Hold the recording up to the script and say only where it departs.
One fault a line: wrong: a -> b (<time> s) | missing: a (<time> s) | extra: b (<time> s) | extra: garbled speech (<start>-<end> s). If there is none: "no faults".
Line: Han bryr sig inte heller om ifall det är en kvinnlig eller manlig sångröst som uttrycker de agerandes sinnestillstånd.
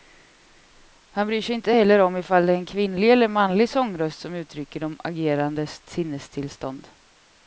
no faults